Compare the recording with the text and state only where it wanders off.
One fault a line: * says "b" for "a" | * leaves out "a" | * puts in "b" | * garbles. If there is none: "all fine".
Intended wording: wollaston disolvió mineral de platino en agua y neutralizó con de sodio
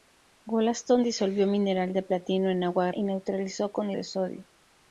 all fine